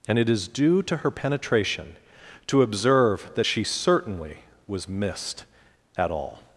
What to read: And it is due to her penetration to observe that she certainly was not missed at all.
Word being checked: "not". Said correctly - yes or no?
no